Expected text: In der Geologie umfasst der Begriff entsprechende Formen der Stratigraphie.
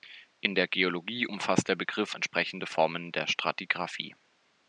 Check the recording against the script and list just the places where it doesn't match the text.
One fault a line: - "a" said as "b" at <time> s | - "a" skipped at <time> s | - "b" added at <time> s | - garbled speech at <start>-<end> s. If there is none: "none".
none